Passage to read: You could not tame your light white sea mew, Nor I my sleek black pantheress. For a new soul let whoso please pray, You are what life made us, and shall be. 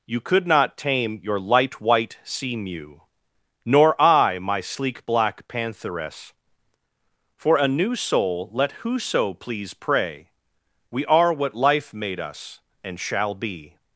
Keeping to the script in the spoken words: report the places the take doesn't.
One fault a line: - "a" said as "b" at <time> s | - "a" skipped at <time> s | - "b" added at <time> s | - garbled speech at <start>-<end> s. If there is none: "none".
- "You" said as "We" at 10.9 s